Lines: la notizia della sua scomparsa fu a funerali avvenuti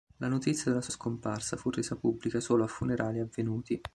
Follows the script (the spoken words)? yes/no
no